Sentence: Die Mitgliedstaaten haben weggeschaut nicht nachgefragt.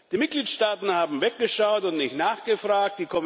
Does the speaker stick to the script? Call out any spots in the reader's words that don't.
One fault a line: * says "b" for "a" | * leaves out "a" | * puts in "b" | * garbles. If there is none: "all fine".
* puts in "und"